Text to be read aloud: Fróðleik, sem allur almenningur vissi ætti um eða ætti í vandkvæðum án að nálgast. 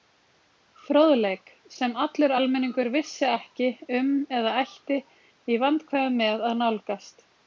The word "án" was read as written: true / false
false